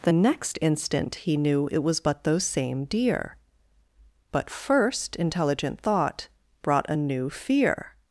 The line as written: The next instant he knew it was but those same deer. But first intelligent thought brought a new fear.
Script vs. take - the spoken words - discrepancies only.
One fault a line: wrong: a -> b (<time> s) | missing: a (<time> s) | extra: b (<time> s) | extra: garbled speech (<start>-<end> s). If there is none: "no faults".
no faults